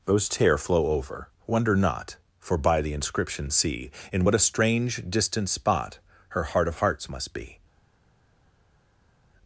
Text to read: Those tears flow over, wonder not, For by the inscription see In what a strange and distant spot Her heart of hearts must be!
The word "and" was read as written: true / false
false